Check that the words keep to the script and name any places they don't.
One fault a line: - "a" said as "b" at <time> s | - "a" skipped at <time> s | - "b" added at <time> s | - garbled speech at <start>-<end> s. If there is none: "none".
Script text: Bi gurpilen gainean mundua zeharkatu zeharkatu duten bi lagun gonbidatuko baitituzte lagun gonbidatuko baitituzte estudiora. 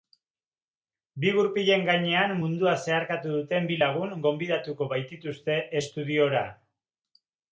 - "zeharkatu" skipped at 3.3 s
- "lagun gonbidatuko baitituzte" skipped at 5.6 s